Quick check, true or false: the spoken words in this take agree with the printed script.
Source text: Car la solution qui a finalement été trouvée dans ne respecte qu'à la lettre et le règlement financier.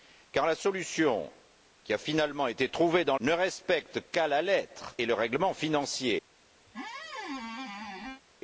true